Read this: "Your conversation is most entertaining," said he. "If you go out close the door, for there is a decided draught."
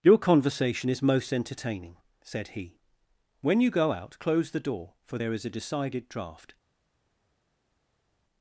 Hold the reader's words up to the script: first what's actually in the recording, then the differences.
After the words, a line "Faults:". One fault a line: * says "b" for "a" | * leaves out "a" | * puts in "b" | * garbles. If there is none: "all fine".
"Your conversation is most entertaining," said he. "When you go out close the door, for there is a decided draught."
Faults:
* says "When" for "If"